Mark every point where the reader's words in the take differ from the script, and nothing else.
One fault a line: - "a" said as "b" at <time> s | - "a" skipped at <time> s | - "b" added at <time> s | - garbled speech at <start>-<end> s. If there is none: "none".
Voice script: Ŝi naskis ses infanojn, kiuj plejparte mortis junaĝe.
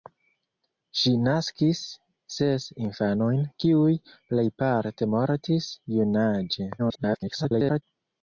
- garbled speech at 6.8-7.8 s